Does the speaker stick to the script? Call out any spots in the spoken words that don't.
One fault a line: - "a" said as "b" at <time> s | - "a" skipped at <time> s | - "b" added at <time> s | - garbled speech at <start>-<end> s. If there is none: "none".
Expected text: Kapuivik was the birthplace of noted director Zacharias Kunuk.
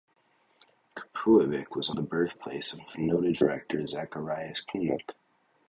none